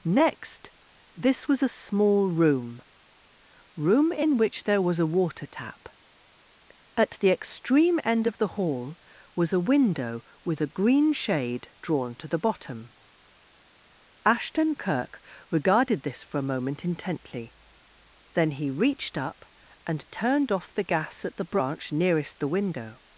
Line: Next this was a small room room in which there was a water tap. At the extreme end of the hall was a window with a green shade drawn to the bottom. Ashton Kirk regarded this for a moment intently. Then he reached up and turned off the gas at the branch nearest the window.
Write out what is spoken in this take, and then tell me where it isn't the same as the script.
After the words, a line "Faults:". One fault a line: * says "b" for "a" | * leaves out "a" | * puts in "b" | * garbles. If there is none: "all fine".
Next this was a small room room in which there was a water tap. At the extreme end of the hall was a window with a green shade drawn to the bottom. Ashton Kirk regarded this for a moment intently. Then he reached up and turned off the gas at the branch nearest the window.
Faults:
all fine